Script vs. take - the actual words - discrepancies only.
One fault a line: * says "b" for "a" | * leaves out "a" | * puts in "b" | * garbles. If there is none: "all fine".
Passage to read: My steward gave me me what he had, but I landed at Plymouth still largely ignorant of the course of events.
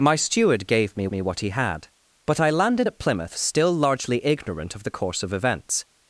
all fine